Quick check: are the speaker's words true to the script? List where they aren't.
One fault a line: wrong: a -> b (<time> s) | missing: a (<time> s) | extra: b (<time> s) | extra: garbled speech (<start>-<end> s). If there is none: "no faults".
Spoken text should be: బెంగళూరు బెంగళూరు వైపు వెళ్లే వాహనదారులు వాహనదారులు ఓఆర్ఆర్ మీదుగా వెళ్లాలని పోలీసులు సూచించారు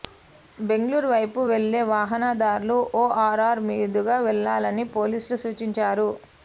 missing: బెంగళూరు (1.1 s)
missing: వాహనదారులు (2.8 s)